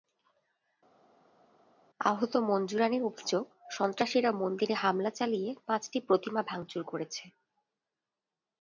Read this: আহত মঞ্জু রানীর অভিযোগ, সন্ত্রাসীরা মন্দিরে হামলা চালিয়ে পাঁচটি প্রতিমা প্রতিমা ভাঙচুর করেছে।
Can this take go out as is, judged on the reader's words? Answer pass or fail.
fail